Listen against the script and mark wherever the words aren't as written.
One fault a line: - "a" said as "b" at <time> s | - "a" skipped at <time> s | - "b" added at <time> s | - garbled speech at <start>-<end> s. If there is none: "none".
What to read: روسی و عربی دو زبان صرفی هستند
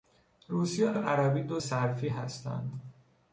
- "و" added at 0.9 s
- "زبان" skipped at 1.6 s